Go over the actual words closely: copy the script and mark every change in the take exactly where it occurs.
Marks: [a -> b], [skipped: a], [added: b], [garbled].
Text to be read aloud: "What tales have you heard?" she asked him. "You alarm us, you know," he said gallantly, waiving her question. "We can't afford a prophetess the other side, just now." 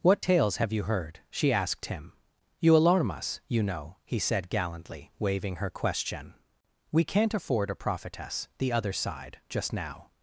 "What tales have you heard?" she asked him. "You alarm us, you know," he said gallantly, waiving her question. "We can't afford a prophetess the other side, just now."